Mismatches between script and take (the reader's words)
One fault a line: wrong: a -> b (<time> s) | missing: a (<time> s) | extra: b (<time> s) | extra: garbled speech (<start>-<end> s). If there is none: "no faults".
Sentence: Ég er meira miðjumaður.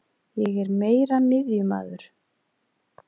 no faults